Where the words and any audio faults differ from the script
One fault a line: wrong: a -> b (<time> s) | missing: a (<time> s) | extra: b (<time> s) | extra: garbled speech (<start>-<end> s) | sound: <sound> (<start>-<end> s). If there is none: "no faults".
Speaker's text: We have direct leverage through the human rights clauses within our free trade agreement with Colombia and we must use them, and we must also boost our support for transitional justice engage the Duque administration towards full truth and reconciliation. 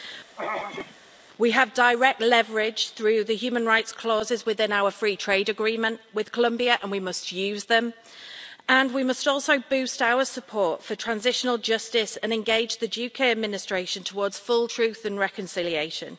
sound: throat clearing (0.4-1.1 s)
extra: and (12.2 s)